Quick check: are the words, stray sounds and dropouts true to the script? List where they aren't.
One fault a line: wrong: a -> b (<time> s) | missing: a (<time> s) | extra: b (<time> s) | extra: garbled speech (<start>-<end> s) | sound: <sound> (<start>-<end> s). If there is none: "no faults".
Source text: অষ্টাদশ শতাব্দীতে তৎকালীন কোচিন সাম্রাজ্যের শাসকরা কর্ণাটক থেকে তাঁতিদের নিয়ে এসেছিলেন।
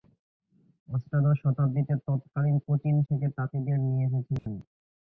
missing: সাম্রাজ্যের শাসকরা কর্ণাটক (3.0 s)
sound: dropout (4.4-4.5 s)